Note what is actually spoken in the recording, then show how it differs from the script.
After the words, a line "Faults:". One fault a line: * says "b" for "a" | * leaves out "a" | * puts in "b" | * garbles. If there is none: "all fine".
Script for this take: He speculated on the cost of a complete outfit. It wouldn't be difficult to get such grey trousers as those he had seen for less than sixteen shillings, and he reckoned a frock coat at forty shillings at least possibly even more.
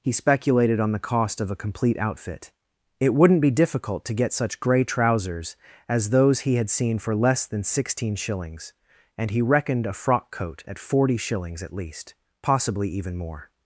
He speculated on the cost of a complete outfit. It wouldn't be difficult to get such grey trousers as those he had seen for less than sixteen shillings, and he reckoned a frock coat at forty shillings at least possibly even more.
Faults:
all fine